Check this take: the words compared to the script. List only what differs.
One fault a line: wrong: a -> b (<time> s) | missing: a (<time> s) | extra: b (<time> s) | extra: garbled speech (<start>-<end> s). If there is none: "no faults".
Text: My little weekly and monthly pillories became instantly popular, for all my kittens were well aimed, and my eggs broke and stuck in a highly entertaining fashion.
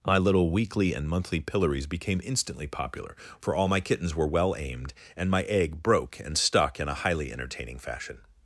wrong: eggs -> egg (5.4 s)